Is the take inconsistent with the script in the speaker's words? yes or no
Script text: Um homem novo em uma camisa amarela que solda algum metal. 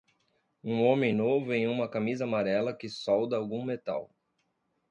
no